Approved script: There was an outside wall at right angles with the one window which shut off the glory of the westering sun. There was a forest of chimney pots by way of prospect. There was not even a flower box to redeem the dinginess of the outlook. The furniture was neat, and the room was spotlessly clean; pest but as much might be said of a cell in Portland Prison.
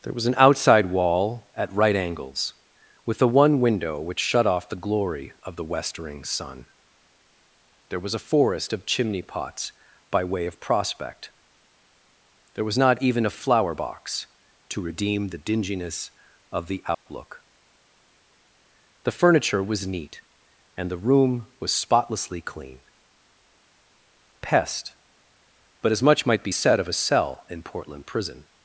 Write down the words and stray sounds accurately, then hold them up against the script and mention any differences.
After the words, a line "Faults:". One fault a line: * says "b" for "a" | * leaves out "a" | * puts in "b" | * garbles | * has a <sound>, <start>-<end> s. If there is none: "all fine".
There was an outside wall at right angles with the one window which shut off the glory of the westering sun. There was a forest of chimney pots by way of prospect. There was not even a flower box to redeem the dinginess of the outlook. The furniture was neat, and the room was spotlessly clean; pest but as much might be said of a cell in Portland Prison.
Faults:
* has a dropout, 16.9-17.1 s